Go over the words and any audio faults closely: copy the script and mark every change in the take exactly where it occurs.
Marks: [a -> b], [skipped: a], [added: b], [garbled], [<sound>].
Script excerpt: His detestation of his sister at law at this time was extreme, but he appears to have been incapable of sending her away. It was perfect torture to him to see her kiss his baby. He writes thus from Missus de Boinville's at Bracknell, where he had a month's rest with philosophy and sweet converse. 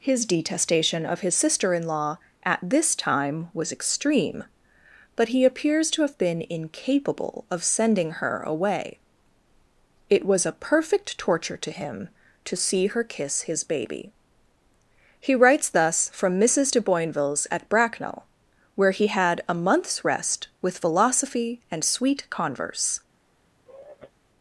His detestation of his sister [at -> in] law at this time was extreme, but he appears to have been incapable of sending her away. It was [added: a] perfect torture to him to see her kiss his baby. He writes thus from Missus de Boinville's at Bracknell, where he had a month's rest with philosophy and sweet converse. [sigh]